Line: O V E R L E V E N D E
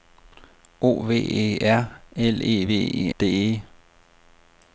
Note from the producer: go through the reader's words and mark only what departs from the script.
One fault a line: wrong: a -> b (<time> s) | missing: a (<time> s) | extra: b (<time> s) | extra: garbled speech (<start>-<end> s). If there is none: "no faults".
missing: N (3.1 s)